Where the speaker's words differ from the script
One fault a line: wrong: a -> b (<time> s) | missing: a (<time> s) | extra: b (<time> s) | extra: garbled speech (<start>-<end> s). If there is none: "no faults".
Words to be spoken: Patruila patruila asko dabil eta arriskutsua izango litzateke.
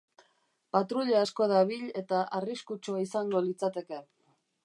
missing: patruila (1.2 s)